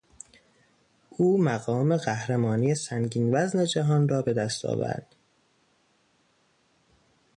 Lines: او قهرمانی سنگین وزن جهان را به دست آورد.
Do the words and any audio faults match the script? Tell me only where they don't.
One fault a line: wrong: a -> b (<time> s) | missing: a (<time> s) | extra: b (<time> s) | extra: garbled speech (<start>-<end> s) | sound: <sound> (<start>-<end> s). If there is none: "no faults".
extra: مقام (1.4 s)